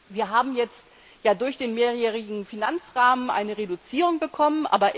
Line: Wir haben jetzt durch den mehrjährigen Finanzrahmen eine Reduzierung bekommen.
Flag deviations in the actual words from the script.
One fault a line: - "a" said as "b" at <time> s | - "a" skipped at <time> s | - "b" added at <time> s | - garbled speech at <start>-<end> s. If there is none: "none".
none